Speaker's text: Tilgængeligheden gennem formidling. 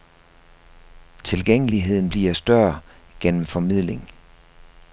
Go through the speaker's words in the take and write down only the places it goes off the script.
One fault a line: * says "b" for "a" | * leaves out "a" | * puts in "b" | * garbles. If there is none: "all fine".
* puts in "bliver større"